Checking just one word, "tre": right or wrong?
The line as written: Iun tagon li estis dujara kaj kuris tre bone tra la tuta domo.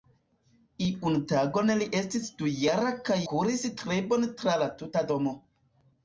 right